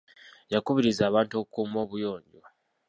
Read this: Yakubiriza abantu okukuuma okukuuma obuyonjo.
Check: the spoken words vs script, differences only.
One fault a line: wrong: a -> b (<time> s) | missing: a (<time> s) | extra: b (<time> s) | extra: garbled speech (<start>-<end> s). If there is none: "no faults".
missing: okukuuma (1.8 s)